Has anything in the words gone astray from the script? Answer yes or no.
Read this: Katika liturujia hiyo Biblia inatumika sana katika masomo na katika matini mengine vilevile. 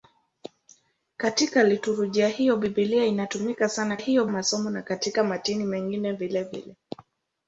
yes